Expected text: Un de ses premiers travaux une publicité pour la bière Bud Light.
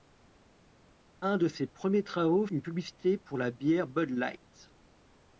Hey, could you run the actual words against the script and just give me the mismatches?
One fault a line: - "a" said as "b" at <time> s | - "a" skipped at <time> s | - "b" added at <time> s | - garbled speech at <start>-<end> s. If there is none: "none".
none